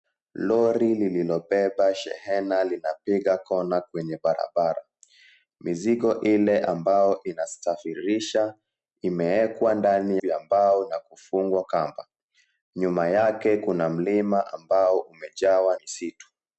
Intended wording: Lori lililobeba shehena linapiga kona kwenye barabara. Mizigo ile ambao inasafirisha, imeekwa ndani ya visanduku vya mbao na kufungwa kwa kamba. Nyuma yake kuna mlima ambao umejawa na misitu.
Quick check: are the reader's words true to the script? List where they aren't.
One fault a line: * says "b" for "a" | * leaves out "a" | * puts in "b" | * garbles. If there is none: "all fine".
* leaves out "ya visanduku"
* leaves out "kwa"
* leaves out "na"